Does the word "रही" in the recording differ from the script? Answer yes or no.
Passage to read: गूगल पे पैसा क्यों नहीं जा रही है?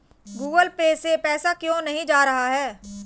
yes